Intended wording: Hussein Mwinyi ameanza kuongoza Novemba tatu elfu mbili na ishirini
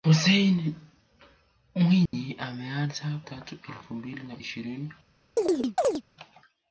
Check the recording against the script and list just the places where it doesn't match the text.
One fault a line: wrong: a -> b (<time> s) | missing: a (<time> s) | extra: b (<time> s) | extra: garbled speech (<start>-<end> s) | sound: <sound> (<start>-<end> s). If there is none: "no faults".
sound: dropout (2.1-2.1 s)
missing: kuongoza Novemba (3.1 s)
sound: chirp (5.4-6.0 s)